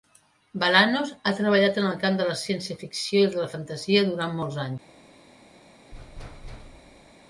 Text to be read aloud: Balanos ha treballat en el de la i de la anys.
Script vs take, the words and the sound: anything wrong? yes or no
yes